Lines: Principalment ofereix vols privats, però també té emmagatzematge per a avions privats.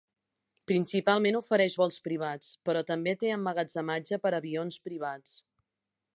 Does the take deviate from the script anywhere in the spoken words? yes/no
no